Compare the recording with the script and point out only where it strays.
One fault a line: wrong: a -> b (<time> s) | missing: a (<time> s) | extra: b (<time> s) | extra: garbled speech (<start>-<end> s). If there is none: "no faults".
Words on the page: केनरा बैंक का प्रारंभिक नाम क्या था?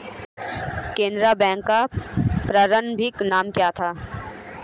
no faults